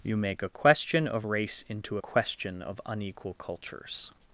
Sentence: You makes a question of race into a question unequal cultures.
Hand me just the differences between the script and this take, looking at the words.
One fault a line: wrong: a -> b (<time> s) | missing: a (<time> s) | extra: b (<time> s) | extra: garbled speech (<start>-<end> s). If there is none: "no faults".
wrong: makes -> make (0.2 s)
extra: of (2.6 s)